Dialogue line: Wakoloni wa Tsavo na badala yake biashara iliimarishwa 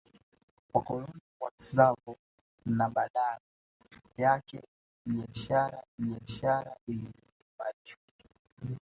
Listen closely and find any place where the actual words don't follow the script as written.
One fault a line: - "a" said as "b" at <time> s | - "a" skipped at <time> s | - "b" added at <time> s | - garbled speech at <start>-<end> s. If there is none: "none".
- "biashara" added at 6.0 s